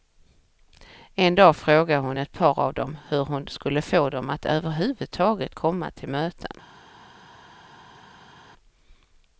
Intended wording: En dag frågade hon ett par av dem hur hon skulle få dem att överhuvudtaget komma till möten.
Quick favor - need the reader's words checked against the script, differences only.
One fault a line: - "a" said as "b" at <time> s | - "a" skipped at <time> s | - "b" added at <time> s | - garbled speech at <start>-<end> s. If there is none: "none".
none